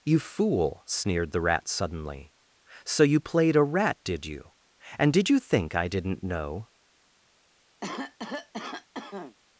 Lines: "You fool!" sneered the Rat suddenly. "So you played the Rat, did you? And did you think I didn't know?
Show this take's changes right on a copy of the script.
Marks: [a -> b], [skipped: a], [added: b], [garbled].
"You fool!" sneered the Rat suddenly. "So you played [the -> a] Rat, did you? And did you think I didn't know?